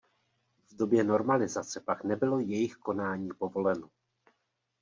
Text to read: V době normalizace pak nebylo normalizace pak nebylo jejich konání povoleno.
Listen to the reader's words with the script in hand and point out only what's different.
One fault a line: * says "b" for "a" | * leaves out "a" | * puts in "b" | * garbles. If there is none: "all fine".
* leaves out "normalizace pak nebylo"